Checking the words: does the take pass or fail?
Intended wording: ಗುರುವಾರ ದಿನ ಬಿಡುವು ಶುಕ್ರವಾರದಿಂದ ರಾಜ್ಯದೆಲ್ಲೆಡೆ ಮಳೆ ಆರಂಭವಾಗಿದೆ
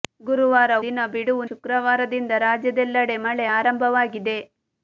pass